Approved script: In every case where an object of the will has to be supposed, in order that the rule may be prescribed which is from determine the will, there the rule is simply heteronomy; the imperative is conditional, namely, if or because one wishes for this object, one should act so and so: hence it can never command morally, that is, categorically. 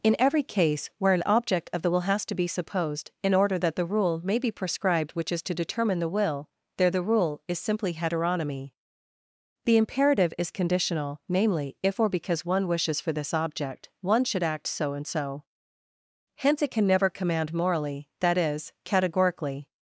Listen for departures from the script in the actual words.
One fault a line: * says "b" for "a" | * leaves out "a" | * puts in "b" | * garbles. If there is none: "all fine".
* says "to" for "from"